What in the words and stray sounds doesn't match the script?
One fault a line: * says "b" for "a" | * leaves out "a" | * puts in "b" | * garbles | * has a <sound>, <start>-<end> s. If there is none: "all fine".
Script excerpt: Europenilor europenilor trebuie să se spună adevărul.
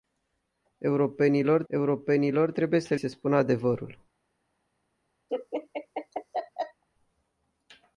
* has a laugh, 5.3-6.8 s